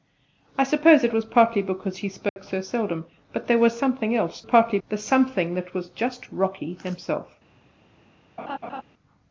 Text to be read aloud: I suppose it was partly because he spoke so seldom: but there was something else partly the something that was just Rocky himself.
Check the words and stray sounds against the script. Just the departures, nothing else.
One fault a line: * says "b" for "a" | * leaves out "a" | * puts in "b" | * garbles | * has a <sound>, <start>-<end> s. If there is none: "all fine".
* has a dropout, 2.3-2.4 s
* has a laugh, 8.4-8.8 s